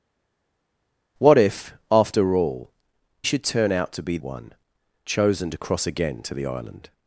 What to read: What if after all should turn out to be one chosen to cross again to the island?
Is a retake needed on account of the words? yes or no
no